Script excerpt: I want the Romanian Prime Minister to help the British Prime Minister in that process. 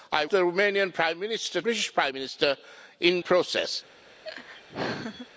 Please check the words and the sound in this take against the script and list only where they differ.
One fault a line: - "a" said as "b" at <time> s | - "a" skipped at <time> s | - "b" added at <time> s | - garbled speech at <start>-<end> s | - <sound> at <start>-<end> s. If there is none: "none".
- "want" skipped at 0.2 s
- "to help the" skipped at 1.6 s
- "that" skipped at 3.2 s
- laugh at 4.2-5.3 s